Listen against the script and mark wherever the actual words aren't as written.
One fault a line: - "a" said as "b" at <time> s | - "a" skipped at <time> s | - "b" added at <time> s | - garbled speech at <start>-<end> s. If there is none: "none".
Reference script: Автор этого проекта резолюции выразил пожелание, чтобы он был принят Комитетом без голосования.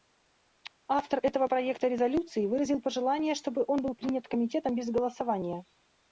none